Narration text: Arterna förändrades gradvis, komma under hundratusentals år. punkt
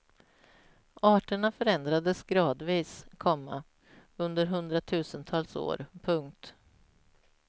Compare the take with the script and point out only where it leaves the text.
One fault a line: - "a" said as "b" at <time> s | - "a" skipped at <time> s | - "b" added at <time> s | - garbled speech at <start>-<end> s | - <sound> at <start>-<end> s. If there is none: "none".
none